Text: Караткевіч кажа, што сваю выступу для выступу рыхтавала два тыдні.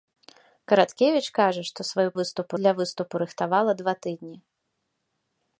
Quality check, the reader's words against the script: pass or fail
pass